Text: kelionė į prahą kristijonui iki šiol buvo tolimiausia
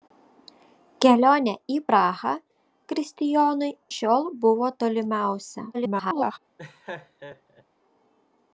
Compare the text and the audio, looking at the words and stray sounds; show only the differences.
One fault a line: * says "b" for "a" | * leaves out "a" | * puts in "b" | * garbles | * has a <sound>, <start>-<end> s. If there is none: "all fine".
* leaves out "iki"
* garbles
* has a laugh, 6.6-7.6 s